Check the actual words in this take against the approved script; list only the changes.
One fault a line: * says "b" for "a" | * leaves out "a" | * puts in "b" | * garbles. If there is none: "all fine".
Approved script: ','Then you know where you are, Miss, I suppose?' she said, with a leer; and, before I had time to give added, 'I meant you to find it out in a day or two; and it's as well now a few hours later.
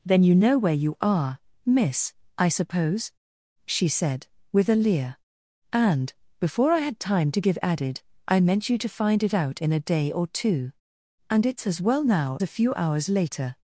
all fine